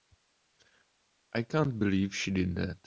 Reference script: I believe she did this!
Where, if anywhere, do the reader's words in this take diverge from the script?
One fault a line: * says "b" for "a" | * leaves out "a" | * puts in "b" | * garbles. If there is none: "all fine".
* puts in "can't"
* says "that" for "this"